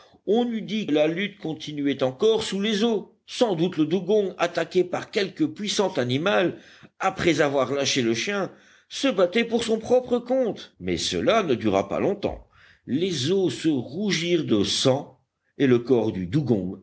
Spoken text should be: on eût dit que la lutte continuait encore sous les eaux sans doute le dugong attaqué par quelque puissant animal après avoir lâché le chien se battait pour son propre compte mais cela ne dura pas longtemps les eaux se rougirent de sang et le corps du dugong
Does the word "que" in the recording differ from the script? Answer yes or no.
yes